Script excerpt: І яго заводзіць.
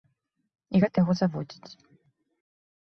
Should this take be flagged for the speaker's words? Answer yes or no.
yes